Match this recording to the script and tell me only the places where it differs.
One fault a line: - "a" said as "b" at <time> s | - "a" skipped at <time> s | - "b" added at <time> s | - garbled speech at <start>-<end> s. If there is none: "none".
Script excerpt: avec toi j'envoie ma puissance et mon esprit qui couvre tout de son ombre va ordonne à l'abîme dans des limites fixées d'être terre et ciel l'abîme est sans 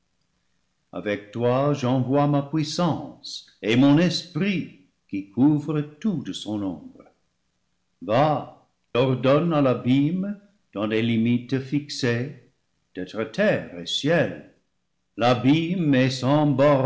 none